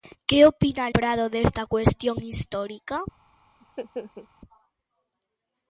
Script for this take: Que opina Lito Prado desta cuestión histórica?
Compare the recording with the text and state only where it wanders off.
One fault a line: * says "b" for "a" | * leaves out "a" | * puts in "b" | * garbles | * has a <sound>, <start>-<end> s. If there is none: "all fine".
* leaves out "Lito"
* has a laugh, 3.6-4.3 s